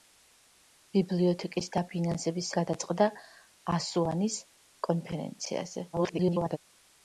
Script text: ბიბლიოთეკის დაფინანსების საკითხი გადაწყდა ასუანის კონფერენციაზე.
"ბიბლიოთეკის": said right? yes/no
yes